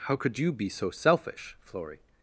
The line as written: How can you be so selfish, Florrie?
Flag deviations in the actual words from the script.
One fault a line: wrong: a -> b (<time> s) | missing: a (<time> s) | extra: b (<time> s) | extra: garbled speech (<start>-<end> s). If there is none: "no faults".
wrong: can -> could (0.1 s)